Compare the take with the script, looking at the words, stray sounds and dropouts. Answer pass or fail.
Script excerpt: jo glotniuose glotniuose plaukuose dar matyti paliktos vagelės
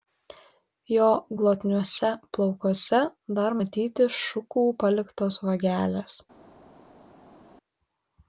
fail